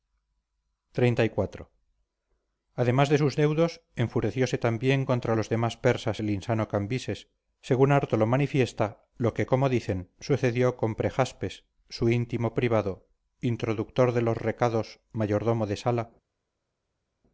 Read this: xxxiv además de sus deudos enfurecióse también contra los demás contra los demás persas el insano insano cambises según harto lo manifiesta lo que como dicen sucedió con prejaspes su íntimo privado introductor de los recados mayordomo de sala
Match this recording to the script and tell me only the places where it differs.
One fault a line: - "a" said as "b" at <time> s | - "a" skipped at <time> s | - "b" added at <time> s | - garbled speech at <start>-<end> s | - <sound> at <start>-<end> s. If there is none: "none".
- "contra los demás" skipped at 5.8 s
- "insano" skipped at 6.7 s